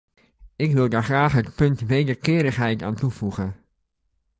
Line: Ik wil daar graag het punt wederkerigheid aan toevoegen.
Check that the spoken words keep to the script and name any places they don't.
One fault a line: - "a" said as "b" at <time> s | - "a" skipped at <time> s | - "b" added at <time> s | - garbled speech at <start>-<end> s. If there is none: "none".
none